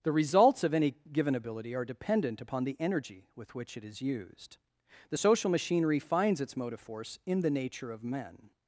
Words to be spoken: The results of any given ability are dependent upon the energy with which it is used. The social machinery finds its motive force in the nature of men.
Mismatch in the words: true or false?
false